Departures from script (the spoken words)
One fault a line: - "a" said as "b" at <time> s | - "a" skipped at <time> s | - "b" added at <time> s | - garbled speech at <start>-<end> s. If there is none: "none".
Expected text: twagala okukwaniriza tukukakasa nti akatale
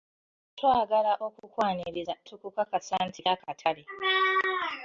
none